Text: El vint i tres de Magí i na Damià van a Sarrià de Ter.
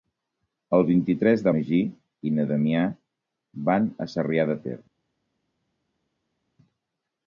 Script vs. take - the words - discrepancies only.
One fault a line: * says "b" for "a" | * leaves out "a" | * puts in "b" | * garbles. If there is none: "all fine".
all fine